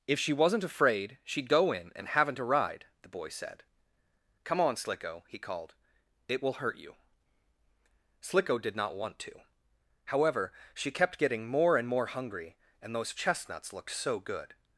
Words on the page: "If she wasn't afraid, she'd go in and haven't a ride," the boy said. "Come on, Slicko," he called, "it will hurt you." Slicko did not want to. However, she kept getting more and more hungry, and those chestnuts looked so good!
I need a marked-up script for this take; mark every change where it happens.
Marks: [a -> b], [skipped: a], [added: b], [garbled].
"If she wasn't afraid, she'd go in and haven't a ride," the boy said. "Come on, Slicko," he called, "it will hurt you." Slicko did not want to. However, she kept getting more and more hungry, and those chestnuts looked so good!